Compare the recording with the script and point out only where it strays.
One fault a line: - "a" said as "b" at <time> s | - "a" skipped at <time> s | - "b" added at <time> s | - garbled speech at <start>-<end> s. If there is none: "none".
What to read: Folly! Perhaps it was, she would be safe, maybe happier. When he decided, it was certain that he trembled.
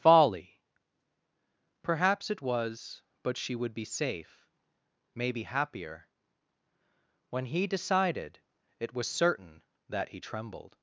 - "but" added at 3.2 s